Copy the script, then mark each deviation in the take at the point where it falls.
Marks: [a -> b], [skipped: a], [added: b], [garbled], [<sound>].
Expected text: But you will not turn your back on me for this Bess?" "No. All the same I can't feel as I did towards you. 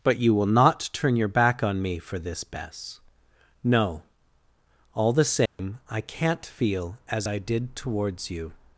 But you will not turn your back on me for this Bess?" "No. All the same [dropout] I can't feel as I did towards you.